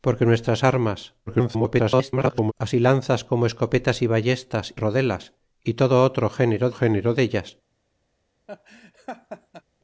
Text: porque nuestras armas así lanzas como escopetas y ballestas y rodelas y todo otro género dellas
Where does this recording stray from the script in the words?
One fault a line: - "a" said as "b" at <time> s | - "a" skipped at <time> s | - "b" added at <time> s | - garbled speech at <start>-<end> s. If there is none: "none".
- garbled speech at 1.3-2.5 s
- "y" skipped at 4.8 s
- "género" added at 6.7 s